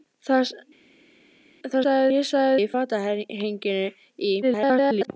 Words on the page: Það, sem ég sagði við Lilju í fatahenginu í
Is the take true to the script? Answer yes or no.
no